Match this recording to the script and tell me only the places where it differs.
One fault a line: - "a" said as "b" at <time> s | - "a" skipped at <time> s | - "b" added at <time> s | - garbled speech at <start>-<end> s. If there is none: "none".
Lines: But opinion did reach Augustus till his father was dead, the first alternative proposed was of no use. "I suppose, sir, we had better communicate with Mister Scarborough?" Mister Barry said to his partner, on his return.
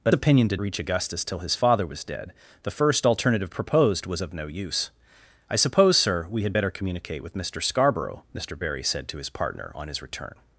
none